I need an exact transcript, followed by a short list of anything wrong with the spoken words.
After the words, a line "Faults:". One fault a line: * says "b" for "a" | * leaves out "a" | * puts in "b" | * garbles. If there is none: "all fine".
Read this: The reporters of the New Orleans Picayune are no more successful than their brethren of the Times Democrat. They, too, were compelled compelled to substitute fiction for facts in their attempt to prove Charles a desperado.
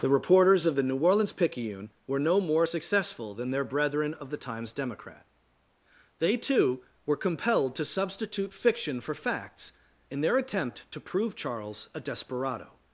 The reporters of the New Orleans Picayune were no more successful than their brethren of the Times Democrat. They, too, were compelled to substitute fiction for facts in their attempt to prove Charles a desperado.
Faults:
* says "were" for "are"
* leaves out "compelled"